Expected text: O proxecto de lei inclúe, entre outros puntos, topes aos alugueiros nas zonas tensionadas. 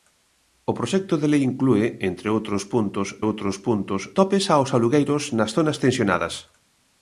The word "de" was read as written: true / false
true